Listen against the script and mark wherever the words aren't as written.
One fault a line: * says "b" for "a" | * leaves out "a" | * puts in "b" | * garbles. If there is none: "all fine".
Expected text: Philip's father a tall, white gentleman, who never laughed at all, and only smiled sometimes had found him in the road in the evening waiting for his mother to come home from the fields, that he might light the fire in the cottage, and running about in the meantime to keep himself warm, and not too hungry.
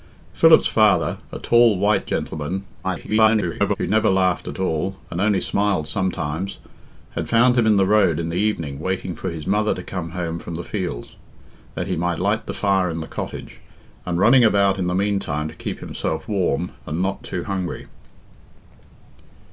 * garbles